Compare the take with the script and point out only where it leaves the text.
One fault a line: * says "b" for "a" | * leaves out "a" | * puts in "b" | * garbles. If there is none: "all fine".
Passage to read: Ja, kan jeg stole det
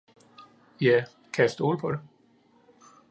* puts in "på"